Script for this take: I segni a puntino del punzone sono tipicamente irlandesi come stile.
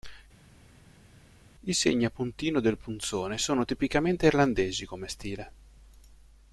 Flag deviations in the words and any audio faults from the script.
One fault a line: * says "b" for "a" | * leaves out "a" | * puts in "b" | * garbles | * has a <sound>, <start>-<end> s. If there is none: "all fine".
all fine